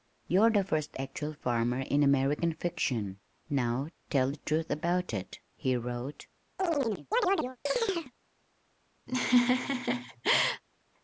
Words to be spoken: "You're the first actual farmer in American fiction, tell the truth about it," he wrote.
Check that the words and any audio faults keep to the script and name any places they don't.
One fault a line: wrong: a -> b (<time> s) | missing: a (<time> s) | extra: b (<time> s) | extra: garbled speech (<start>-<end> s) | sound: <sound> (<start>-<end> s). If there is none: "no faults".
extra: now (3.5 s)
sound: chirp (6.6-8.1 s)
sound: laugh (9.1-10.6 s)